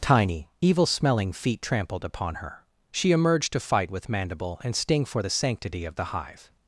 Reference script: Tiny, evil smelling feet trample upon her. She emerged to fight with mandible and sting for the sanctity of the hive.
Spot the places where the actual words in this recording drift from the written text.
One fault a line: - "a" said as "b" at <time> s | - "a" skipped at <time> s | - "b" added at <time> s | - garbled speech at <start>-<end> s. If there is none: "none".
- "trample" said as "trampled" at 1.6 s